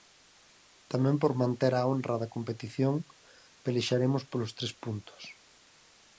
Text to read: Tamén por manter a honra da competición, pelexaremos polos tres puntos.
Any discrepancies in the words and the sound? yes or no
no